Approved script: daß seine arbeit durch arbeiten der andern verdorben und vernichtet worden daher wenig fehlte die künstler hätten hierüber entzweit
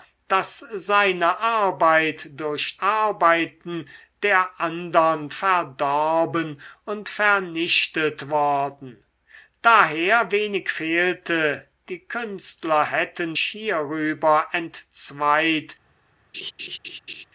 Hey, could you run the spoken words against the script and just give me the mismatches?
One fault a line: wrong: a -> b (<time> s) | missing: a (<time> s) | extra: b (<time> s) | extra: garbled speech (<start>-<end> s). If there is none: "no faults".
no faults